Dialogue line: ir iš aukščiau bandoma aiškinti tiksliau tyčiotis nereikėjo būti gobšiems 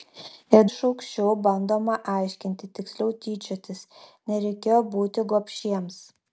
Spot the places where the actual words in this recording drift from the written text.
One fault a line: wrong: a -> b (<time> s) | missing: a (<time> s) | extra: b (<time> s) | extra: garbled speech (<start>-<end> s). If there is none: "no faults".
no faults